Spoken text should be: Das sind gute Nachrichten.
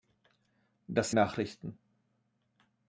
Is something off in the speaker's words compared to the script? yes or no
yes